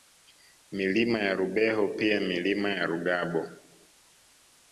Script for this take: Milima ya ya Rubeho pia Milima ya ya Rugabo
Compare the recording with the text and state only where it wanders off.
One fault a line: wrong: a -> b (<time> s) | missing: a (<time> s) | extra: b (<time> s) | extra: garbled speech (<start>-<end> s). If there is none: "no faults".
missing: ya (1.3 s)
missing: ya (2.9 s)